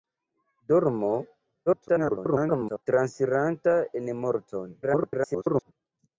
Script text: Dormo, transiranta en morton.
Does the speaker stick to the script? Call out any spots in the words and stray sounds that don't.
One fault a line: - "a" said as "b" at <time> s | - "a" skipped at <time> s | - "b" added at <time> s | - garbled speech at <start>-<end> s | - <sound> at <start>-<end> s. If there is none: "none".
- garbled speech at 1.7-2.8 s
- garbled speech at 4.8-5.7 s